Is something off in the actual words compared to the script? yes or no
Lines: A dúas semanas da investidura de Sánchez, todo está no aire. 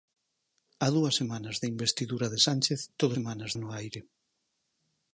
yes